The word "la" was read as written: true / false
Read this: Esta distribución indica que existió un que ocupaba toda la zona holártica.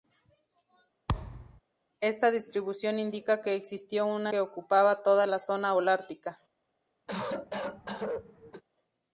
true